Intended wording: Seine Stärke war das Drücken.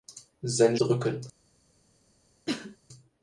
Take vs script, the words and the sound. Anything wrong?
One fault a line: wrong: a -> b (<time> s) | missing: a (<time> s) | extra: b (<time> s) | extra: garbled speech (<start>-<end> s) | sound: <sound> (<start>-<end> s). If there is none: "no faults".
missing: Stärke war das (0.8 s)
sound: cough (2.5-2.8 s)